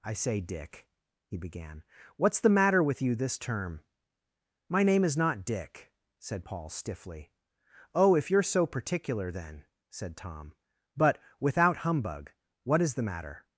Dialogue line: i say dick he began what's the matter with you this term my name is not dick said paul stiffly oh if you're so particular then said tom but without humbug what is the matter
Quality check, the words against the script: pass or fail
pass